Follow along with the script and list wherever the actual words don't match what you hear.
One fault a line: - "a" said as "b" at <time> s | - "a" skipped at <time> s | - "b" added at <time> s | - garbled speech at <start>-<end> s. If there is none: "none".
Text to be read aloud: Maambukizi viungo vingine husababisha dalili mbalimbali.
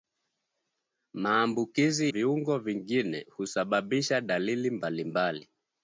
none